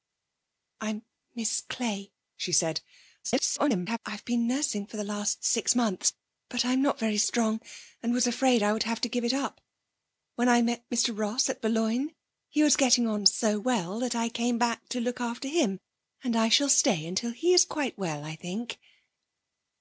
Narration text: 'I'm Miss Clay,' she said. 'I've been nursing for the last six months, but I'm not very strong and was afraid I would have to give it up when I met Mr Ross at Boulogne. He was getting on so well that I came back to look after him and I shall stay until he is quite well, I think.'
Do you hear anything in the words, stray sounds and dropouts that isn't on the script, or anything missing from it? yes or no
yes